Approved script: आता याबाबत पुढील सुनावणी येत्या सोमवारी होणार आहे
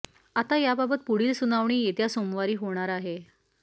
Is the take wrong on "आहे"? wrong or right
right